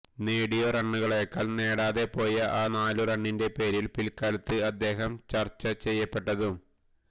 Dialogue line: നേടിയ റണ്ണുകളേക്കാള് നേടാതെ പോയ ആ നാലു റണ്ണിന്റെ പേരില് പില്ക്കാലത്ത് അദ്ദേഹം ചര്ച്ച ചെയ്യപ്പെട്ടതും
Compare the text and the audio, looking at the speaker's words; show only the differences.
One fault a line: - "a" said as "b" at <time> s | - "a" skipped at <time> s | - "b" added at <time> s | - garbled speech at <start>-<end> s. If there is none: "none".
none